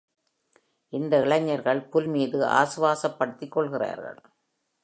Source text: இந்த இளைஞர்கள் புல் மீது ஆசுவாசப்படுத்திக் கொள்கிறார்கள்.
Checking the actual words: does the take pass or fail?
pass